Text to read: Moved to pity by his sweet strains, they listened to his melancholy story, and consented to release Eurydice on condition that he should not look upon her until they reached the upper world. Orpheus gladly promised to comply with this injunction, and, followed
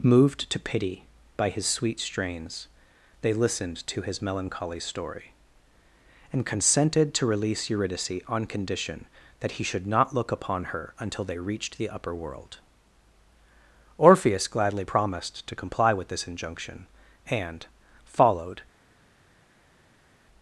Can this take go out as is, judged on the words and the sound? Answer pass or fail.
pass